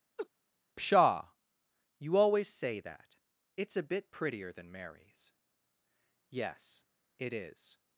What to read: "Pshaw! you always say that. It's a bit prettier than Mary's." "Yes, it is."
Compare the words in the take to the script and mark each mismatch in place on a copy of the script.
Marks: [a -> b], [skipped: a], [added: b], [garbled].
"Pshaw! you always say that. It's a bit prettier than Mary's." "Yes, it is."